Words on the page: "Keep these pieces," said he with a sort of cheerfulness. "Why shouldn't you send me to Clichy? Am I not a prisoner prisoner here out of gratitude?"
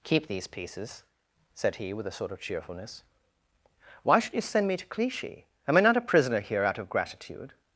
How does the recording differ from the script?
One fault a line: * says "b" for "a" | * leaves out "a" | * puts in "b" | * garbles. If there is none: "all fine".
* says "should" for "shouldn't"
* leaves out "prisoner"